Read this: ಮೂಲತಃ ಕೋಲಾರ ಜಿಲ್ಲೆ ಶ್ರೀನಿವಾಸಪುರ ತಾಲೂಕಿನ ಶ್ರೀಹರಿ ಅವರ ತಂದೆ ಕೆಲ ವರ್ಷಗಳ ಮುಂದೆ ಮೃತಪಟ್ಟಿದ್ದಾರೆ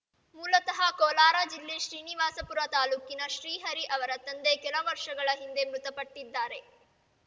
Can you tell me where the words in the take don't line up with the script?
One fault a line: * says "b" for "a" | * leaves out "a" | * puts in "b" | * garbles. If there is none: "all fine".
* says "ಹಿಂದೆ" for "ಮುಂದೆ"